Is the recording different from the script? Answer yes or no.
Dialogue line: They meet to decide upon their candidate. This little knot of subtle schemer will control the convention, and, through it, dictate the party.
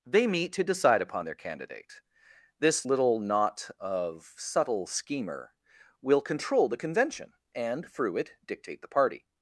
no